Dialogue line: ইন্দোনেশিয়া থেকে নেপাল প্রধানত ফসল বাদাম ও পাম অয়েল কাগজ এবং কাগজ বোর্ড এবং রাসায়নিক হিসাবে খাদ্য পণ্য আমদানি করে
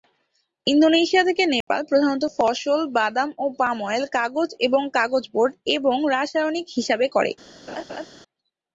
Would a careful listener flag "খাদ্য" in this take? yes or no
yes